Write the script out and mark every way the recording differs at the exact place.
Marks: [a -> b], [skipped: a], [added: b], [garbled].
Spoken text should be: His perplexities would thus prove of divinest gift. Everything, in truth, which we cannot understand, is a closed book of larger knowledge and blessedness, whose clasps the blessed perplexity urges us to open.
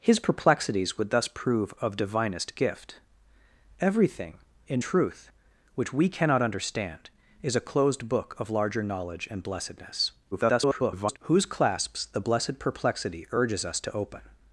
His perplexities would thus prove of divinest gift. Everything, in truth, which we cannot understand, is a closed book of larger knowledge and blessedness, [garbled] whose clasps the blessed perplexity urges us to open.